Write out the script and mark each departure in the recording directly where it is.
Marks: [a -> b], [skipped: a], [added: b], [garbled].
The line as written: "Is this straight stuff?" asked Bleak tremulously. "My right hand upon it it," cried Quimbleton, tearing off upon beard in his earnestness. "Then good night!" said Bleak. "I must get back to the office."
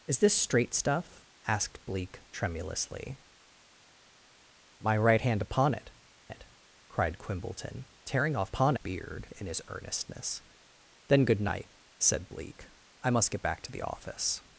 "Is this straight stuff?" asked Bleak tremulously. "My right hand upon it it," cried Quimbleton, tearing off upon beard in his earnestness. "Then good night!" said Bleak. "I must get back to the office."